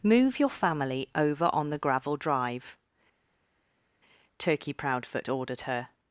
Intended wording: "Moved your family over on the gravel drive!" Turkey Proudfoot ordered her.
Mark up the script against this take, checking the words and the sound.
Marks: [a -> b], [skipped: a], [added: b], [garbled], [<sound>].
["Moved -> Move] your family over on the gravel drive!" Turkey Proudfoot ordered her.